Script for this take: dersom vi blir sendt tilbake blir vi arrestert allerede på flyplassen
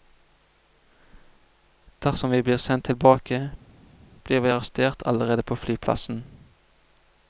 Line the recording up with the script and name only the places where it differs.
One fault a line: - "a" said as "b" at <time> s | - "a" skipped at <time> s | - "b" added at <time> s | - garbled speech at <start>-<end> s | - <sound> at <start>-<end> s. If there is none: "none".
none